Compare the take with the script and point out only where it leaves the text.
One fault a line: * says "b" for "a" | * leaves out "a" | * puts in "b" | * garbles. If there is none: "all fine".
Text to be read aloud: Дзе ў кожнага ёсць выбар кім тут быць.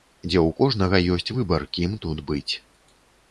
all fine